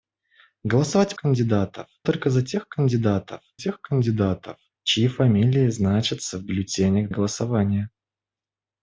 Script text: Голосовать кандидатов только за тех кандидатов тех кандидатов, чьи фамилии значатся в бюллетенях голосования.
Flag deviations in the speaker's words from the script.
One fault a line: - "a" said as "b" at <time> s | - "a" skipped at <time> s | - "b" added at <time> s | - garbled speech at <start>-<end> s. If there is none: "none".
none